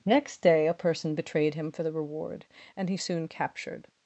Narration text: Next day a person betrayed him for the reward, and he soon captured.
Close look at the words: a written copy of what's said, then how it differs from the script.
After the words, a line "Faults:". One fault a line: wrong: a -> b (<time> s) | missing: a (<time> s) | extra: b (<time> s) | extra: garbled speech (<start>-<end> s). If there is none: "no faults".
Next day a person betrayed him for the reward, and he soon captured.
Faults:
no faults